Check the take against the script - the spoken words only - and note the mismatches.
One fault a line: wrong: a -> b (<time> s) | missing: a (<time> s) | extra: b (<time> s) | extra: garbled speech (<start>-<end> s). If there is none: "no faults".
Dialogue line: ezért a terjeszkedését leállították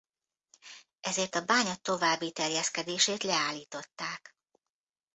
extra: bánya további (1.4 s)